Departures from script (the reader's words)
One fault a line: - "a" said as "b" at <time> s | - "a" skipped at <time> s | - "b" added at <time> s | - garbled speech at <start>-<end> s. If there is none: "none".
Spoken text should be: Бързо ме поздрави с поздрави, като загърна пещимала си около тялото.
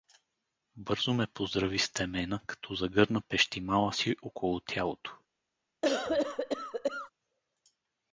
- "поздрави" said as "темена" at 1.9 s